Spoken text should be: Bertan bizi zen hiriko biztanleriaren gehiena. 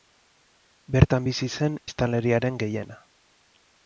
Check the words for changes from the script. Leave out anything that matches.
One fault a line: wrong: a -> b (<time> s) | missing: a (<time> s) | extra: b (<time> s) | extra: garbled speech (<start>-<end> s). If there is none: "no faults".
missing: hiriko (1.8 s)